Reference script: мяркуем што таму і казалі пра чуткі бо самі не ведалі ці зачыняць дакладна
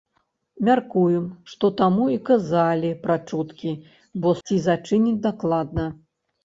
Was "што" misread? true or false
false